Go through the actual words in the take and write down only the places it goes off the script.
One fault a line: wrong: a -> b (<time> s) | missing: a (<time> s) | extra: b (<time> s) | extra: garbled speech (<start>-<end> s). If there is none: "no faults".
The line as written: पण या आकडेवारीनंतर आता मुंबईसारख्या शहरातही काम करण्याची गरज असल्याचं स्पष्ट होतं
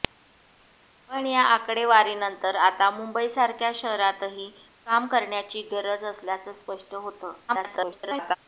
extra: garbled speech (7.5-8.4 s)